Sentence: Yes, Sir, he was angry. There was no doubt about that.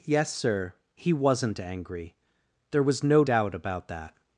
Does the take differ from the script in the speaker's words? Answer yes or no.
yes